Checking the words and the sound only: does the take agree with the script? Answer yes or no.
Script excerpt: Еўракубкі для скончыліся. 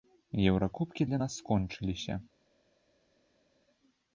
no